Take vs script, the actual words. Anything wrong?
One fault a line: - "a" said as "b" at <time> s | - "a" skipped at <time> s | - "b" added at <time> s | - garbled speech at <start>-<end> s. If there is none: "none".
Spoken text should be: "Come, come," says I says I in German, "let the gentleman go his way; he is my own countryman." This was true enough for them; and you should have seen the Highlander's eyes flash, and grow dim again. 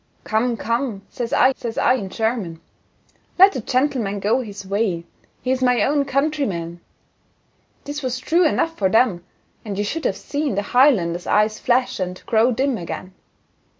none